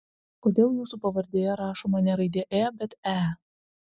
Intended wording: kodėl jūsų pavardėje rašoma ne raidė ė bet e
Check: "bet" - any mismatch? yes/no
no